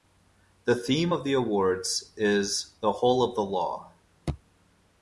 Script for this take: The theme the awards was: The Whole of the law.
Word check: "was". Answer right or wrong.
wrong